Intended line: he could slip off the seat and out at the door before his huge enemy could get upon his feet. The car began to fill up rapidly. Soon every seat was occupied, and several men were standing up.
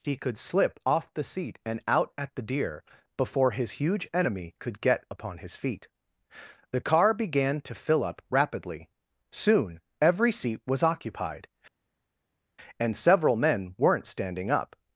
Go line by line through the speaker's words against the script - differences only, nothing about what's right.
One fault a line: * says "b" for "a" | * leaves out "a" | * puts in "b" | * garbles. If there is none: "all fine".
* says "deer" for "door"
* says "weren't" for "were"